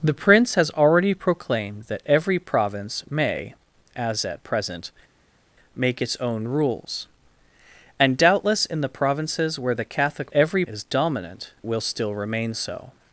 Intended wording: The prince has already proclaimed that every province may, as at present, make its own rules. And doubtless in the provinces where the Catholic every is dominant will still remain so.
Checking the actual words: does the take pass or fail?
pass